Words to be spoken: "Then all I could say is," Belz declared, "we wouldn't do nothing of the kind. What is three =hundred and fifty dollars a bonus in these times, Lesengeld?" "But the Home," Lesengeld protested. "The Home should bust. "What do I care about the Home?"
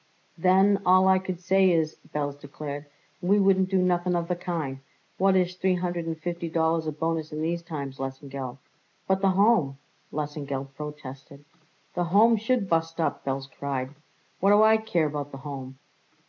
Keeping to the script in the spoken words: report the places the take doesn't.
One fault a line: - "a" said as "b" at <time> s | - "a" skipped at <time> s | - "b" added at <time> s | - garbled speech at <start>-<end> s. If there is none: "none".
- "up Belz cried" added at 13.0 s